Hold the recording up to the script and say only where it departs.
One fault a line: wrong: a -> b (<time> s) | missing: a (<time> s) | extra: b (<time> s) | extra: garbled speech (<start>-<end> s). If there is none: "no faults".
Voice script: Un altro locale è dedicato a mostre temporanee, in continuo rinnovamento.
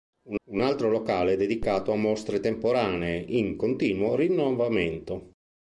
extra: un (0.4 s)